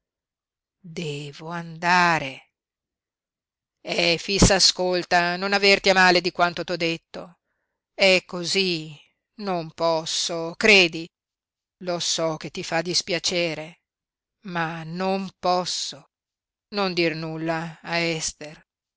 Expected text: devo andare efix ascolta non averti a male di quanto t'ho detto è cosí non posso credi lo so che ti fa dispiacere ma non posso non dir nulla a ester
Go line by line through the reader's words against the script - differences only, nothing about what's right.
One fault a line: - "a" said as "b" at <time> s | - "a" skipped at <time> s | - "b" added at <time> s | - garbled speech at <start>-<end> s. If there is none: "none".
none